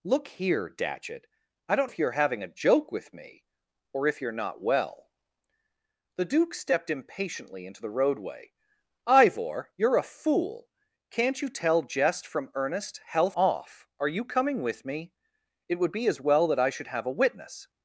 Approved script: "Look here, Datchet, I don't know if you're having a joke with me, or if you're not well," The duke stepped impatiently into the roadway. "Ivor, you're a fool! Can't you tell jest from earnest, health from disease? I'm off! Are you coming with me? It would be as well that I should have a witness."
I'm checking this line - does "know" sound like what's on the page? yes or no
no